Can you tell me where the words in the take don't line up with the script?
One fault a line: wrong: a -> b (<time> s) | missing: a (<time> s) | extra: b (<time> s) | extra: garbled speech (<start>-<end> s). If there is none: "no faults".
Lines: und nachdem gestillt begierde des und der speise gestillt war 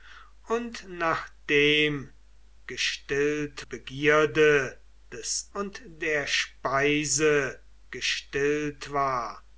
no faults